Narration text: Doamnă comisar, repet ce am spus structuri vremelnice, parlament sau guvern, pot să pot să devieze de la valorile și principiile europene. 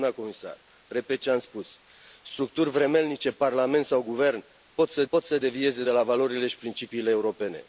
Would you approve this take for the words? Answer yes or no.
yes